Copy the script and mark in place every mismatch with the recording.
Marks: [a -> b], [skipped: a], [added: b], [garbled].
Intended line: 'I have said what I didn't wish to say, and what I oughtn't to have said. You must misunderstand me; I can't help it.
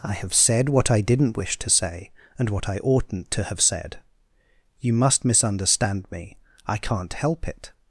'I have said what I didn't wish to say, and what I oughtn't to have said. You must misunderstand me; I can't help it.